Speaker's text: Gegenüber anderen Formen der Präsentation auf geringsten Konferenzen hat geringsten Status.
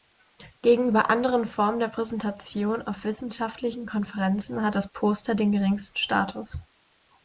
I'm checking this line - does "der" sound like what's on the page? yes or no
yes